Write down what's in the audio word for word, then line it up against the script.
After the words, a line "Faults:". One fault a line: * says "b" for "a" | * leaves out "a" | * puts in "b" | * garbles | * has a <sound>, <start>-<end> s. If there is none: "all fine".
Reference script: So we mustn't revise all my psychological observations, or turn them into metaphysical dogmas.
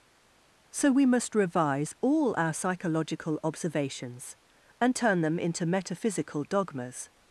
So we must revise all our psychological observations, and turn them into metaphysical dogmas.
Faults:
* says "must" for "mustn't"
* says "our" for "my"
* says "and" for "or"